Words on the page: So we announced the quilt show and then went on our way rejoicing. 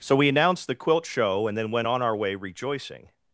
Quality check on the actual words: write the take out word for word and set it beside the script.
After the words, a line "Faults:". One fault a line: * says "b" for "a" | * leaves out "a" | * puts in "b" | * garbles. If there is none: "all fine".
So we announced the quilt show and then went on our way rejoicing.
Faults:
all fine